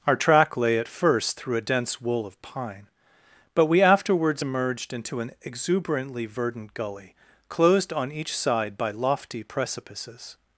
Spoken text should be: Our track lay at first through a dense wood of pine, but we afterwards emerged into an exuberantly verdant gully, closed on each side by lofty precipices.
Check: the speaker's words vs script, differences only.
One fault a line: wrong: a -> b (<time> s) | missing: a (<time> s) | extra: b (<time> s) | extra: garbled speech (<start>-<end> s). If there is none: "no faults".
wrong: wood -> wool (2.0 s)